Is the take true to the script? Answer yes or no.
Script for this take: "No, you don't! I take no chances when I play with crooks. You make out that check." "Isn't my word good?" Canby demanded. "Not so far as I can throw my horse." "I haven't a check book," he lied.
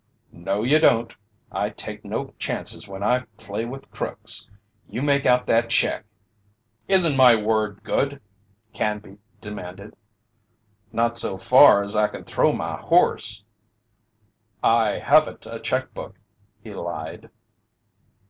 yes